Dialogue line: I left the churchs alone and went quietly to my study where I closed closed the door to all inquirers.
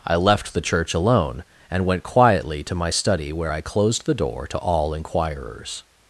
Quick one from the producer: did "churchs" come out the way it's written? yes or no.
no